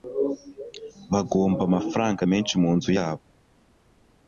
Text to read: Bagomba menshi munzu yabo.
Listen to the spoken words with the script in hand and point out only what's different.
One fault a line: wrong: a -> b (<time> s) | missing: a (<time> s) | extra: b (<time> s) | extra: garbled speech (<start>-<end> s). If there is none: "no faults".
extra: amafaranga (1.7 s)